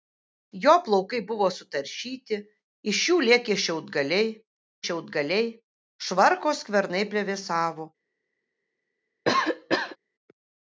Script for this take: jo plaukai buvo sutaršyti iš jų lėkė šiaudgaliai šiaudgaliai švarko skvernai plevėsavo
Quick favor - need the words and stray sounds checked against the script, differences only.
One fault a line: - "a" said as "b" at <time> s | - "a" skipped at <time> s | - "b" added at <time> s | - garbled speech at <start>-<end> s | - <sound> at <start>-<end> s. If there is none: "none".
- cough at 9.3-10.0 s